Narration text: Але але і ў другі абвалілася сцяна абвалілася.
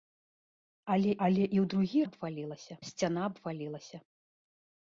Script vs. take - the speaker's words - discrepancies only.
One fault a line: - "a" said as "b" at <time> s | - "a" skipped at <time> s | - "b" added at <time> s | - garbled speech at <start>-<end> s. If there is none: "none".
none